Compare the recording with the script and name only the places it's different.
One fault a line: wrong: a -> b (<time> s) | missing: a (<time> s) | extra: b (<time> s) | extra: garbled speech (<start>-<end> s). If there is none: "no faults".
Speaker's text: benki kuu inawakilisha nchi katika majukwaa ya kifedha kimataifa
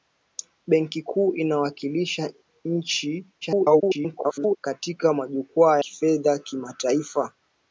extra: garbled speech (3.4-4.6 s)
missing: ya (5.8 s)